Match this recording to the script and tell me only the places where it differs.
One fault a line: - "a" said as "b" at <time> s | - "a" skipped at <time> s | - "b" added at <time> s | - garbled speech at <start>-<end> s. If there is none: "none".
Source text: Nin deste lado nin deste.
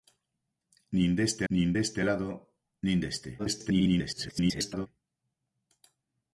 - "nin deste" added at 1.5 s
- garbled speech at 3.4-4.9 s